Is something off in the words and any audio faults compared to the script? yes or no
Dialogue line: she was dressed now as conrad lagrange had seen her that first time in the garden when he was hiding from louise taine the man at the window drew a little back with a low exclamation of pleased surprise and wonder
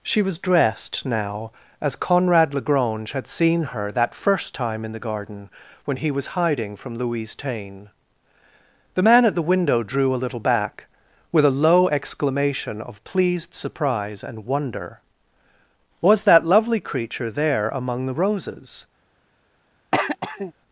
yes